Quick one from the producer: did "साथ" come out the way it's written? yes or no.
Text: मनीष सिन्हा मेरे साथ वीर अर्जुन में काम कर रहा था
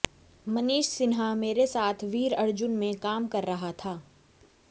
yes